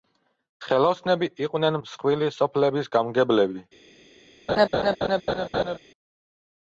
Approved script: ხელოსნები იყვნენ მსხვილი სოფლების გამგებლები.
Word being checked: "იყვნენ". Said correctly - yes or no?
yes